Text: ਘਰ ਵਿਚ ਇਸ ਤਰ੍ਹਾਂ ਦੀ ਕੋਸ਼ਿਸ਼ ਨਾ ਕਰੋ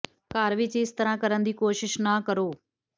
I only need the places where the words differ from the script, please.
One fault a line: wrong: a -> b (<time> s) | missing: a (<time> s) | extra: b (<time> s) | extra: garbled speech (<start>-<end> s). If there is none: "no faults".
extra: ਕਰਨ (1.2 s)